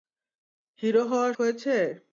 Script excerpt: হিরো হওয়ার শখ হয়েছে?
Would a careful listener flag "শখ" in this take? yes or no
yes